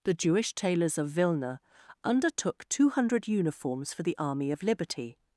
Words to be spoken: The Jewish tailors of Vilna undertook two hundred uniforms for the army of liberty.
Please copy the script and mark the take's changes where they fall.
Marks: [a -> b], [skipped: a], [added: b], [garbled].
The Jewish tailors of Vilna undertook two hundred uniforms for the army of liberty.